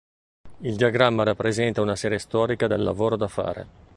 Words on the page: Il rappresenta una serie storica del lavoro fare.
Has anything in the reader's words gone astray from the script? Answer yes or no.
yes